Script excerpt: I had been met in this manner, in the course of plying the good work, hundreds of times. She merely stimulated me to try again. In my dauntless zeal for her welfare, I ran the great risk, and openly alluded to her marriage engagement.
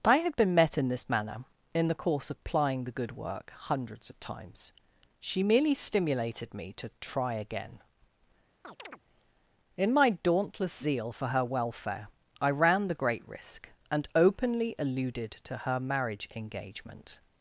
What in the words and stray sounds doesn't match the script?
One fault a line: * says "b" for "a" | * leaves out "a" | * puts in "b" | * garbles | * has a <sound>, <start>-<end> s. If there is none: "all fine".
* has a chirp, 8.6-9.0 s